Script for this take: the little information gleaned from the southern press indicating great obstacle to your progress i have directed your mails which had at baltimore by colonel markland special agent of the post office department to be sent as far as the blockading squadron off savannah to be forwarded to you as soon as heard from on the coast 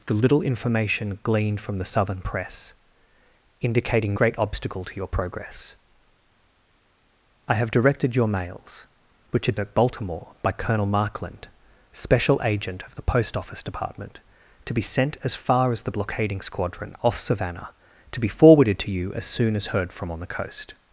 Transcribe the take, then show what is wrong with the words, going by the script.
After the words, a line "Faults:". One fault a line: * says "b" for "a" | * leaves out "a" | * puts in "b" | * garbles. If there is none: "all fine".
the little information gleaned from the southern press indicating great obstacle to your progress i have directed your mails which had at baltimore by colonel markland special agent of the post office department to be sent as far as the blockading squadron off savannah to be forwarded to you as soon as heard from on the coast
Faults:
all fine